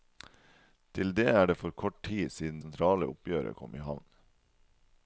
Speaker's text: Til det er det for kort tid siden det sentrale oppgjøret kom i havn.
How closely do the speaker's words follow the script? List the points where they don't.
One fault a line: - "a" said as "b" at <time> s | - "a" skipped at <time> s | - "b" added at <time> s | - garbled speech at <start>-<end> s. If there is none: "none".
- "det" skipped at 2.6 s